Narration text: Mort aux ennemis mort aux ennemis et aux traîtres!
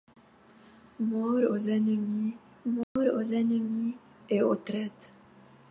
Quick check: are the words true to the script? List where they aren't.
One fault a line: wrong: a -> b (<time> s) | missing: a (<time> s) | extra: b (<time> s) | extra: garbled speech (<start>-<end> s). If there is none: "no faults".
no faults